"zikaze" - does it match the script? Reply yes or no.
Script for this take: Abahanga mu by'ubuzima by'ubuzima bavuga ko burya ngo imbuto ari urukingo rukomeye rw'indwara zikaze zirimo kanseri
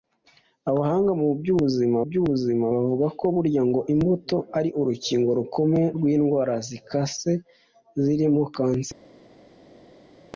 yes